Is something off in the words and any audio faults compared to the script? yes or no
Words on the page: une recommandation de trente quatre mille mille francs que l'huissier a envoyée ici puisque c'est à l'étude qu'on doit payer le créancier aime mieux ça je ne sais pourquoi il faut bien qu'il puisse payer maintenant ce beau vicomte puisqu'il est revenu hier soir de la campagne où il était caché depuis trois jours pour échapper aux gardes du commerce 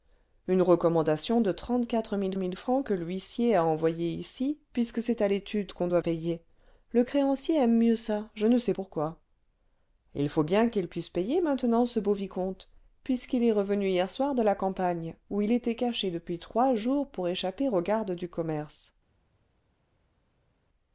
no